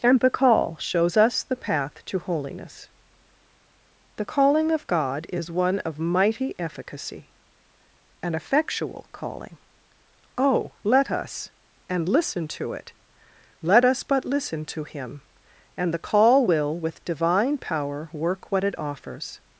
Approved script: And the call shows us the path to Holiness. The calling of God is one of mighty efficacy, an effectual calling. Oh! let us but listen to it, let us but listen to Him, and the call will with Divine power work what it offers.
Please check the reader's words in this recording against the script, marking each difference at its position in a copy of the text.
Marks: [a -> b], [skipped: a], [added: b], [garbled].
And the call shows us the path to Holiness. The calling of God is one of mighty efficacy, an effectual calling. Oh! let us [but -> and] listen to it, let us but listen to Him, and the call will with Divine power work what it offers.